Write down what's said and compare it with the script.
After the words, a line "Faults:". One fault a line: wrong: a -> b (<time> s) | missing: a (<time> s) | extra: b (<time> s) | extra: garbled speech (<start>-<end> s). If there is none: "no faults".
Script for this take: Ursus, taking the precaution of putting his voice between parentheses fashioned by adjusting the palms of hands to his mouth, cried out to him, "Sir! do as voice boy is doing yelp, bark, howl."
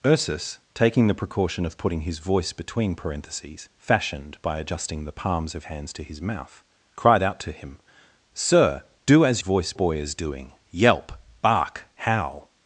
Ursus, taking the precaution of putting his voice between parentheses fashioned by adjusting the palms of hands to his mouth, cried out to him, "Sir! do as voice boy is doing yelp, bark, howl."
Faults:
no faults